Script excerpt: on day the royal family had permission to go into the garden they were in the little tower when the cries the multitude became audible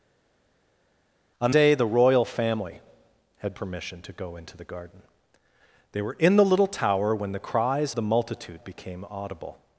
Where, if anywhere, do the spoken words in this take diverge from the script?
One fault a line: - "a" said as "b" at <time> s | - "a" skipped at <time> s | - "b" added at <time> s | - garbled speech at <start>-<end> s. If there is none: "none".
none